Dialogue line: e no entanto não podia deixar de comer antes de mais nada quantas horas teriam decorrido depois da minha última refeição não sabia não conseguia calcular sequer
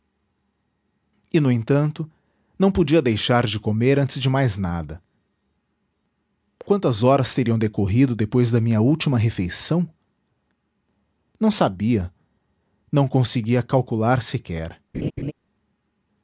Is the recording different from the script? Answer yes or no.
no